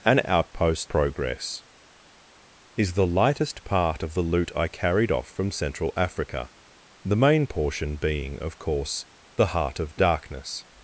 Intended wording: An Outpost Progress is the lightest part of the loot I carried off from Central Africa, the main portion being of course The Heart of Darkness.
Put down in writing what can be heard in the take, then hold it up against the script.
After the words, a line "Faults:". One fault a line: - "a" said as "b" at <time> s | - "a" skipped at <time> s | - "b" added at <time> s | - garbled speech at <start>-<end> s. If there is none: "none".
An Outpost Progress is the lightest part of the loot I carried off from Central Africa, the main portion being of course The Heart of Darkness.
Faults:
none